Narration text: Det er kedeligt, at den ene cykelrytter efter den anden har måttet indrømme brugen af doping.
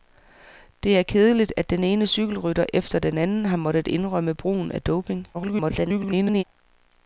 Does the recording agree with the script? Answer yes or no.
no